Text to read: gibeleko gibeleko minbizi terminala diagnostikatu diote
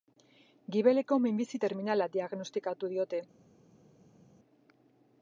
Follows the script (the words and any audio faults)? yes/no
no